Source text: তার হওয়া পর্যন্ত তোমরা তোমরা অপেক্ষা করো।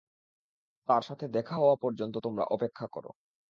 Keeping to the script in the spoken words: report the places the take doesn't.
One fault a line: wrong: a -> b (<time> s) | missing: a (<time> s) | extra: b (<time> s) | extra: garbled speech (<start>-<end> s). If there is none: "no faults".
extra: সাথে দেখা (1.0 s)
missing: তোমরা (2.4 s)